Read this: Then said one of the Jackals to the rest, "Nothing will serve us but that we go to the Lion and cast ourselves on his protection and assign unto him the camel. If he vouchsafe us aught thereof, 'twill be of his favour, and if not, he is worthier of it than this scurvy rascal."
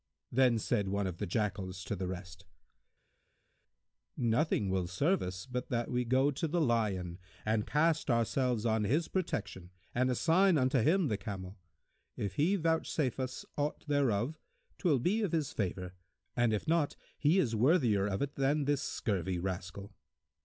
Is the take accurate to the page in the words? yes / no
yes